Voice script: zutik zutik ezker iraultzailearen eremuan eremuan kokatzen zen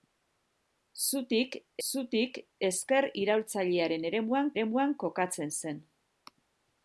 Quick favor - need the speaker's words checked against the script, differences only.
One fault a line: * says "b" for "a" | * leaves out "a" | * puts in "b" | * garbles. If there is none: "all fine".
all fine